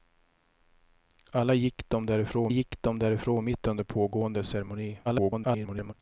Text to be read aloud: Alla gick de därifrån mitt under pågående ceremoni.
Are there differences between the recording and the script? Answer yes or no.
yes